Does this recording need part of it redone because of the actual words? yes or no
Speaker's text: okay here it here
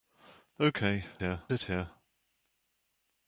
no